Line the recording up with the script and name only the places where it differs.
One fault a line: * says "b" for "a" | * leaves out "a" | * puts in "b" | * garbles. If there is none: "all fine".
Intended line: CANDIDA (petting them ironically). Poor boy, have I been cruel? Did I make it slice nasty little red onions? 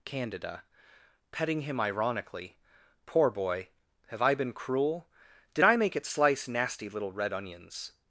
* says "him" for "them"